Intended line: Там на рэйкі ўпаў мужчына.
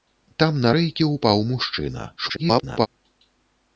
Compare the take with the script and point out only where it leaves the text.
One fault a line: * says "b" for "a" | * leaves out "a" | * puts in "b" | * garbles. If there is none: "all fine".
* garbles